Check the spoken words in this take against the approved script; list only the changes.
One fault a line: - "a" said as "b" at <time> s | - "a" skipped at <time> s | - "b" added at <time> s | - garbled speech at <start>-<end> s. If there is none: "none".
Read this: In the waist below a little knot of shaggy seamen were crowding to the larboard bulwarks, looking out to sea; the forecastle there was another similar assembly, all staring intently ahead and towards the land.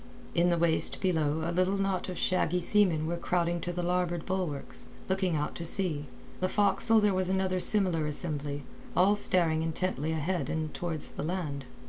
none